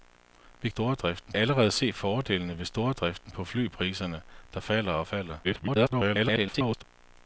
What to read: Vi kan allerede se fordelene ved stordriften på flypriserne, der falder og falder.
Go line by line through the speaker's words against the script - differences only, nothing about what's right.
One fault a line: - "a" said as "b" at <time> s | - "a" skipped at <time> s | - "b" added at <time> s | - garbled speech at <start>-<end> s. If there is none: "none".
- "kan" said as "stordriften" at 0.7 s
- garbled speech at 5.4-6.8 s